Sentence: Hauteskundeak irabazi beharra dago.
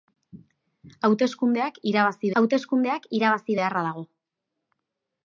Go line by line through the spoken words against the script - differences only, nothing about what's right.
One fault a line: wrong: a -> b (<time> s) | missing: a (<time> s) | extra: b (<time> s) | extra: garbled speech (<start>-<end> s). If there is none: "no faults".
extra: hauteskundeak irabazi (2.4 s)